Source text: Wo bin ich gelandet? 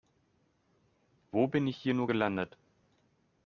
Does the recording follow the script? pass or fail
fail